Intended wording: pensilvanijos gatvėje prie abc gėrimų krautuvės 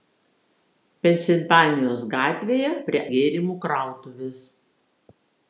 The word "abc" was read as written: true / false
false